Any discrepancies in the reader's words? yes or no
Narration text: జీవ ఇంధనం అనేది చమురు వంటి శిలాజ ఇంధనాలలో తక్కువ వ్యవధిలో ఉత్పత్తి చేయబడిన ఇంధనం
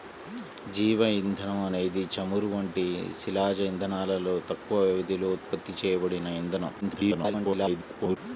yes